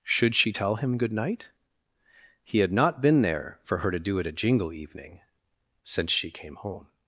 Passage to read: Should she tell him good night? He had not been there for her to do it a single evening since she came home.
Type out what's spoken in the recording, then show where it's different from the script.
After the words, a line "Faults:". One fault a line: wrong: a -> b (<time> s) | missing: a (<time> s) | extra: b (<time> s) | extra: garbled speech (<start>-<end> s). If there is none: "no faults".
Should she tell him good night? He had not been there for her to do it a jingle evening since she came home.
Faults:
wrong: single -> jingle (4.3 s)